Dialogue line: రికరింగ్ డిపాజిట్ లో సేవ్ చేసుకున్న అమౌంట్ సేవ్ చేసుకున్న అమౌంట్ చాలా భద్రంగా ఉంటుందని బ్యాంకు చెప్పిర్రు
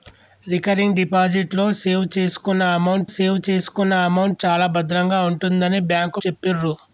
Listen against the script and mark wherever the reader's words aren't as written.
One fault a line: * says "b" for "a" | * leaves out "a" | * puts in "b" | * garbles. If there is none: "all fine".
all fine